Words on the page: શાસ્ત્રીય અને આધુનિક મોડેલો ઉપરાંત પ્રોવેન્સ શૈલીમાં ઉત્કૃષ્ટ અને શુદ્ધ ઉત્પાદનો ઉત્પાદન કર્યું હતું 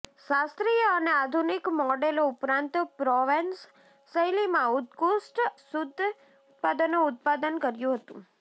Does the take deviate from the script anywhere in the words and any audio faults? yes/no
yes